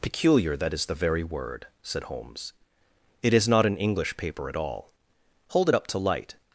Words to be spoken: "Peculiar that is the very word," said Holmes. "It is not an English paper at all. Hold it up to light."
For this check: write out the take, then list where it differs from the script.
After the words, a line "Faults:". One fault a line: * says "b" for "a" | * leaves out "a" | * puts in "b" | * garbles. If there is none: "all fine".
"Peculiar that is the very word," said Holmes. "It is not an English paper at all. Hold it up to light."
Faults:
all fine